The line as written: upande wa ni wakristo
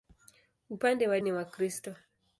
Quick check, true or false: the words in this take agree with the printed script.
true